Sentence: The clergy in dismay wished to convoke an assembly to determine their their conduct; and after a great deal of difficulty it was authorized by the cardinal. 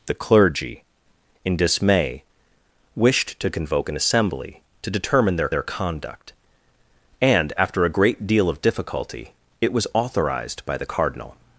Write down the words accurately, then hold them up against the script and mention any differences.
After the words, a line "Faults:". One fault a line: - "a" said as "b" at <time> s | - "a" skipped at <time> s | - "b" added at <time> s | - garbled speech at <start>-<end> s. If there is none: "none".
The clergy in dismay wished to convoke an assembly to determine their their conduct; and after a great deal of difficulty it was authorized by the cardinal.
Faults:
none